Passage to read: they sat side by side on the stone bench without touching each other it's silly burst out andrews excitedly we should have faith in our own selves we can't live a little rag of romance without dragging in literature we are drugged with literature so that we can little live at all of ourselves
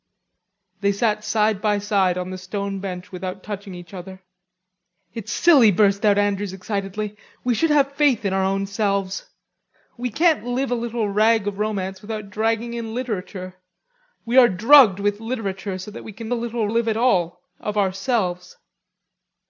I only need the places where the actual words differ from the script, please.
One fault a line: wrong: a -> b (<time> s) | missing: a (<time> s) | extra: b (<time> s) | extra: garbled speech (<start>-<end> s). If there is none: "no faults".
no faults